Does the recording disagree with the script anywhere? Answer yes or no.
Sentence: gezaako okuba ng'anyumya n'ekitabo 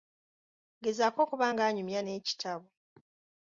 no